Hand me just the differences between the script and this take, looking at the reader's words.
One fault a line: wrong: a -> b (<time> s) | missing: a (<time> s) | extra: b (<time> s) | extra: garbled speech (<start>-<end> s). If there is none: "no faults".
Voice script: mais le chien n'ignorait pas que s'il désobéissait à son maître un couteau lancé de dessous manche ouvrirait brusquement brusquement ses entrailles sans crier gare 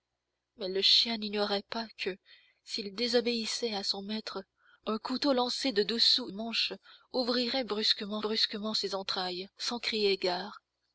no faults